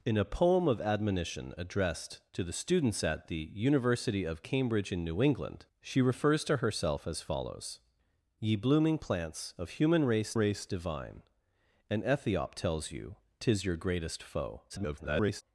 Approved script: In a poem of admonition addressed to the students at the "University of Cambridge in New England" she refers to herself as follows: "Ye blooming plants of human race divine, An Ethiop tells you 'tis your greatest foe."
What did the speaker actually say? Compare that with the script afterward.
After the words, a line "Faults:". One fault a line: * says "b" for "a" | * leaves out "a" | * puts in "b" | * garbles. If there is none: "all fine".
In a poem of admonition addressed to the students at the "University of Cambridge in New England" she refers to herself as follows: "Ye blooming plants of human race race divine, An Ethiop tells you 'tis your greatest foe." [garbled]
Faults:
* puts in "race"
* garbles